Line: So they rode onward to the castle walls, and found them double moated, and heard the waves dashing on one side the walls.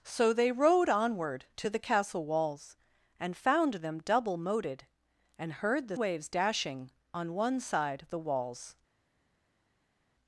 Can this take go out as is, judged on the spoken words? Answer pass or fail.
pass